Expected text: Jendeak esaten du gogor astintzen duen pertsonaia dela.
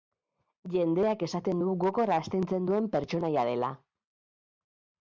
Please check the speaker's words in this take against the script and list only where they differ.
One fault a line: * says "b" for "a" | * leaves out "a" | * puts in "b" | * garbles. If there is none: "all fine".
all fine